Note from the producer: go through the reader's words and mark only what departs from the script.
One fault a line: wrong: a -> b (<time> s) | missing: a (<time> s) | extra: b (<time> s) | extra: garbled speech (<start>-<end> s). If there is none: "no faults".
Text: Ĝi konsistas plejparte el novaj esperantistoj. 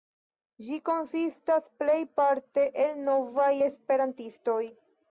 no faults